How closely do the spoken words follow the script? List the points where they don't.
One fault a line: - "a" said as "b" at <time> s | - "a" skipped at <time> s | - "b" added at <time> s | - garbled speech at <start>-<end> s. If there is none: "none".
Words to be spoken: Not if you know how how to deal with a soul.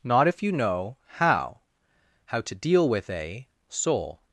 none